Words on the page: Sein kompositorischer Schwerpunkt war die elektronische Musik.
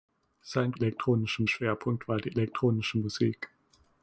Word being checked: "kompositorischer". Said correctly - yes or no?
no